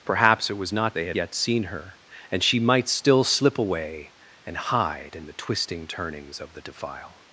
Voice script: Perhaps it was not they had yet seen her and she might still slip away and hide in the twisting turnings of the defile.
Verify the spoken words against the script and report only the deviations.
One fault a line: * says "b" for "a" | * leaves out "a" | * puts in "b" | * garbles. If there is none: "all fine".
all fine